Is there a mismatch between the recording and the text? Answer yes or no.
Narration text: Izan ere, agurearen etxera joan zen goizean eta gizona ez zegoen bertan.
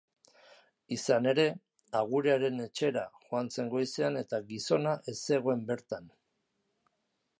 no